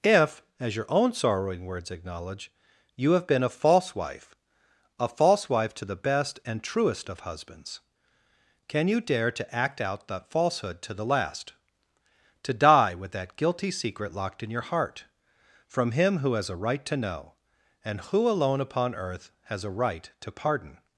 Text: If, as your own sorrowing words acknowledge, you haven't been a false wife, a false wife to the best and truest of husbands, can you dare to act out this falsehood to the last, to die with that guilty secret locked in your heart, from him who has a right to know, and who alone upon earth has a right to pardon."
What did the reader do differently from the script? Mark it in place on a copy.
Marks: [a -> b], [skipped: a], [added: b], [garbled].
If, as your own sorrowing words acknowledge, you [haven't -> have] been a false wife, a false wife to the best and truest of husbands, can you dare to act out [this -> that] falsehood to the last, to die with that guilty secret locked in your heart, from him who has a right to know, and who alone upon earth has a right to pardon."